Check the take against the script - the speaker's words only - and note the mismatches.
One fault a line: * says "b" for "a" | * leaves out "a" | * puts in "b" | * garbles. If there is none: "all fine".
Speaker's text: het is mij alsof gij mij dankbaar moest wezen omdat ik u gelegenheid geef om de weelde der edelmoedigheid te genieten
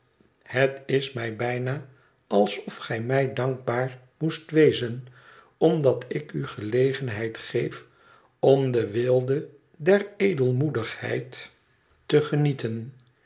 * puts in "bijna"